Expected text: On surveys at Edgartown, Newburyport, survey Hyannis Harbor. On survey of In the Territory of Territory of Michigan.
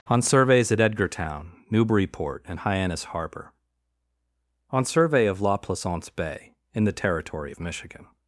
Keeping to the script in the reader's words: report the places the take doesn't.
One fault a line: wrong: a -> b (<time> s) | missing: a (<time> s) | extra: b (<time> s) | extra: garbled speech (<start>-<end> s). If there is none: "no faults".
wrong: survey -> and (2.5 s)
extra: La Plaisance Bay (5.4 s)
missing: Territory of (7.6 s)